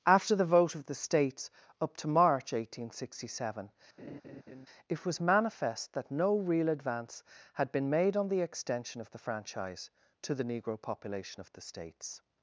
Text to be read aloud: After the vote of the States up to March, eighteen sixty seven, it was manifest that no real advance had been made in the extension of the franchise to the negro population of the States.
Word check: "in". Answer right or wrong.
wrong